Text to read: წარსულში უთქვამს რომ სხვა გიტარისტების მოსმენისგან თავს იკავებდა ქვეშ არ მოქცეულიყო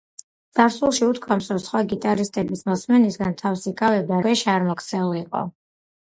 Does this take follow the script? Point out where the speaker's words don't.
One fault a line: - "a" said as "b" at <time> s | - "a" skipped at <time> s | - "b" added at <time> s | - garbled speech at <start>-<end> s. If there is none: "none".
none